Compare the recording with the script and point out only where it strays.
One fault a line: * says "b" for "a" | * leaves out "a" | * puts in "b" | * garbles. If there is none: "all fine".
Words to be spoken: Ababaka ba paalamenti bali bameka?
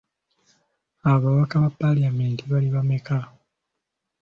all fine